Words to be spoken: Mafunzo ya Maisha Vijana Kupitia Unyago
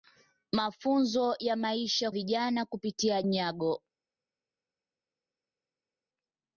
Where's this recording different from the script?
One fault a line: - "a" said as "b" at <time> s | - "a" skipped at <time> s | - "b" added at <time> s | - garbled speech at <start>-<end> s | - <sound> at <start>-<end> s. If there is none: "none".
none